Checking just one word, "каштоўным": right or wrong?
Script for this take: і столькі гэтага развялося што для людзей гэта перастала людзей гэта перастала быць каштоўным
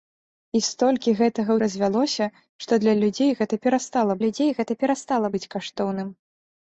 right